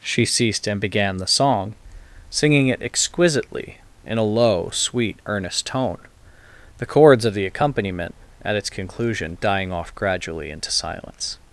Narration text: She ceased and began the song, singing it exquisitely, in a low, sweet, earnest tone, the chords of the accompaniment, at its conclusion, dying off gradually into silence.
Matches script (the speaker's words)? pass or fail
pass